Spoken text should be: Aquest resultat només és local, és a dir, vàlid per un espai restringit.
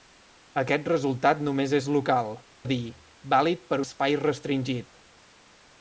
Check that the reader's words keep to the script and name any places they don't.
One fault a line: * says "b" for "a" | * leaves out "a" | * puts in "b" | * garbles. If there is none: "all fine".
* leaves out "és"
* leaves out "un"